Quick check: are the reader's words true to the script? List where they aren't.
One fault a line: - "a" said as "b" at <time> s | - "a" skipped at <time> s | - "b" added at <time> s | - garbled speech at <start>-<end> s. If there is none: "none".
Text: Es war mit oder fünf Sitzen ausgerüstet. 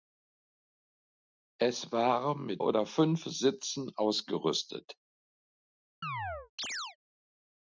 none